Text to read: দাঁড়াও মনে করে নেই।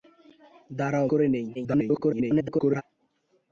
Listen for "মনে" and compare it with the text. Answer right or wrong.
wrong